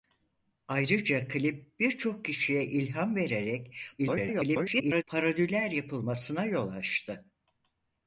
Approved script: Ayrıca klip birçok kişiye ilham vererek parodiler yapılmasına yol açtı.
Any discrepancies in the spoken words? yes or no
yes